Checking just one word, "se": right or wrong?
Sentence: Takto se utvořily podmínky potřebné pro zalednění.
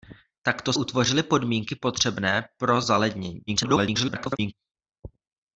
wrong